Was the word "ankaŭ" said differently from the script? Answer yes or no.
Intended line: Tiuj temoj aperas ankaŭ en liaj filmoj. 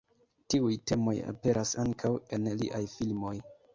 no